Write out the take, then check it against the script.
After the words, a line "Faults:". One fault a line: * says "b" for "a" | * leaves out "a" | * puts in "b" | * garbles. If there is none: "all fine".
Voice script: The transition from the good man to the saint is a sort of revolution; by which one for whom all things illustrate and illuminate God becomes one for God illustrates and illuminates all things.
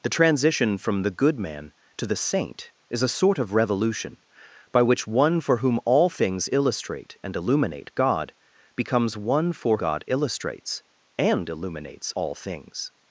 The transition from the good man to the saint is a sort of revolution; by which one for whom all things illustrate and illuminate God becomes one for God illustrates and illuminates all things.
Faults:
all fine